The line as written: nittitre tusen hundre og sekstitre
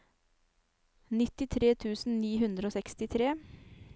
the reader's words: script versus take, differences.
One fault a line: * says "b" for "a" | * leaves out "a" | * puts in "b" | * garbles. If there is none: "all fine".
* puts in "ni"